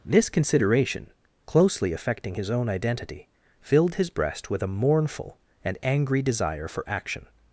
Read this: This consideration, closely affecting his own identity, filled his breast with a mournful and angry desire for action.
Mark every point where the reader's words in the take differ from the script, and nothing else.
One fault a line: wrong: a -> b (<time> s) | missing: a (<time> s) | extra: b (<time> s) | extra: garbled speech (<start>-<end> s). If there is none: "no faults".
no faults